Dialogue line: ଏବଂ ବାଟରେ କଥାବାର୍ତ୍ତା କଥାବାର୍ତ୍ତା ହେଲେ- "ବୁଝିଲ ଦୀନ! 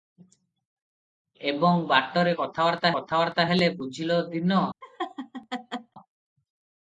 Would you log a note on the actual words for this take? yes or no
no